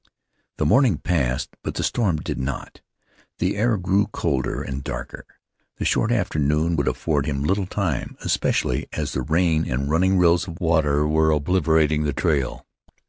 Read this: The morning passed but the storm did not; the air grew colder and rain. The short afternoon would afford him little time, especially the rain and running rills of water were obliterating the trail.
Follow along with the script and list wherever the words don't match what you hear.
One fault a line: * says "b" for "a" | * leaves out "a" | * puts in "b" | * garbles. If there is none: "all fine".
* says "darker" for "rain"
* puts in "as"